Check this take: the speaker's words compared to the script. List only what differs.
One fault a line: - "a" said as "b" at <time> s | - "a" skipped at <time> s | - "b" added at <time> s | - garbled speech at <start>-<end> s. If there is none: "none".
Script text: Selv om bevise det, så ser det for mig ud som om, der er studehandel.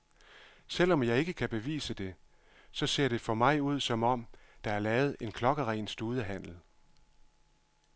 - "jeg ikke kan" added at 1.0 s
- "lavet en klokkeren" added at 4.8 s